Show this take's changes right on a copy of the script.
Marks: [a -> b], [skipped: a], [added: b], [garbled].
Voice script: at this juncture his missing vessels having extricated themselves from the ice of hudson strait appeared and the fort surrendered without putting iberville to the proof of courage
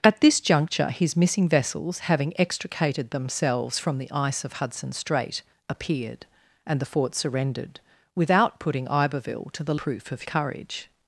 at this juncture his missing vessels having extricated themselves from the ice of hudson strait appeared and the fort surrendered without putting iberville to the proof of courage